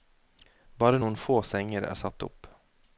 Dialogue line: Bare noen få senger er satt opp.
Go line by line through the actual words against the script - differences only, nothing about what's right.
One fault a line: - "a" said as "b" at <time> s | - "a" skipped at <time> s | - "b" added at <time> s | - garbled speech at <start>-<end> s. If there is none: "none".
none